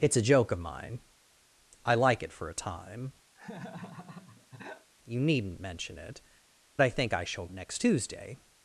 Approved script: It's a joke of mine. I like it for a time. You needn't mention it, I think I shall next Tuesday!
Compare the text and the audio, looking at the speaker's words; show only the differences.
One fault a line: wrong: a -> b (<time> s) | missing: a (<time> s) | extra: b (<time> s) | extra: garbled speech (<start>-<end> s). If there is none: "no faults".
no faults